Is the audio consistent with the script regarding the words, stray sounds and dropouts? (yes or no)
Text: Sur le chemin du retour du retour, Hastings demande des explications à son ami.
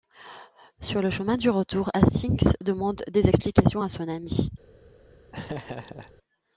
no